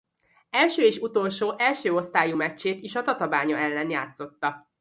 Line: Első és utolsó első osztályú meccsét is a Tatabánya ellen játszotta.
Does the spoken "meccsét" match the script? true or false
true